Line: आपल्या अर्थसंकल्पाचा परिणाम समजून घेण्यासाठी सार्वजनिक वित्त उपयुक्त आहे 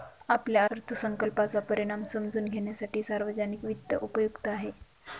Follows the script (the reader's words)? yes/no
yes